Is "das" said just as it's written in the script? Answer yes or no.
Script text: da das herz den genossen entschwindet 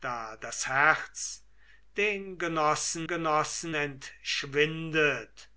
yes